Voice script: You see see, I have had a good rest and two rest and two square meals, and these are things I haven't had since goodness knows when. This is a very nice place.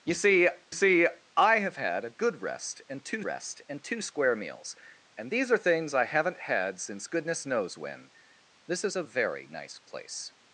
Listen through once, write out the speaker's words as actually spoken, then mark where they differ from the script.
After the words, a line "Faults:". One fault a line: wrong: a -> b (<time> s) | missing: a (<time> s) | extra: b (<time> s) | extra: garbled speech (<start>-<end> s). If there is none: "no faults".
You see see, I have had a good rest and two rest and two square meals, and these are things I haven't had since goodness knows when. This is a very nice place.
Faults:
no faults